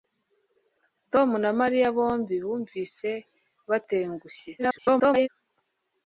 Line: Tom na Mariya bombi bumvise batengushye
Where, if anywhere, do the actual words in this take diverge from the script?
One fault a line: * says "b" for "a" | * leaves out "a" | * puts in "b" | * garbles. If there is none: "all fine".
* garbles